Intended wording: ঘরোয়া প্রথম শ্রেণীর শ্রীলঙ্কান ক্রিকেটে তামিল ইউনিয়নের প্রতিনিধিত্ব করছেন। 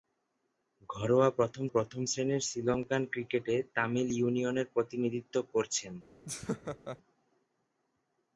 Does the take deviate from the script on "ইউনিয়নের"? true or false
false